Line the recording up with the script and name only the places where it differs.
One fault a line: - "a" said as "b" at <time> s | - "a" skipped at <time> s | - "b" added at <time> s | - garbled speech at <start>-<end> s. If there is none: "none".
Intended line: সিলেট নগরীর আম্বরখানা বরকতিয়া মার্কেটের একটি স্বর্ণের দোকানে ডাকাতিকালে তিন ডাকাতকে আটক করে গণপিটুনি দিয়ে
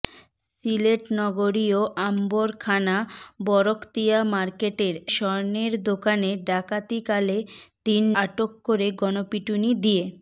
- "একটি" skipped at 5.0 s
- "ডাকাতকে" skipped at 8.0 s